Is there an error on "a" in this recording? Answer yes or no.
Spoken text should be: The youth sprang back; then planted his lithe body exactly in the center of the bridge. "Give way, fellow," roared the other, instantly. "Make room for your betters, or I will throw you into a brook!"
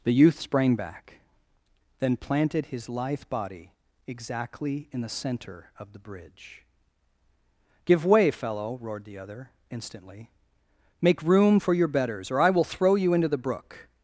yes